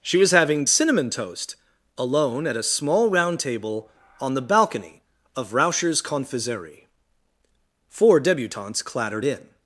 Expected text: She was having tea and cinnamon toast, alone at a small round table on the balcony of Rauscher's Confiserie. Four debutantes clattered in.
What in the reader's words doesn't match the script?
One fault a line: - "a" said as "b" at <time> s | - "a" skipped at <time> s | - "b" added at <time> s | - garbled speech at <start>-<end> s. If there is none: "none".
- "tea and" skipped at 0.7 s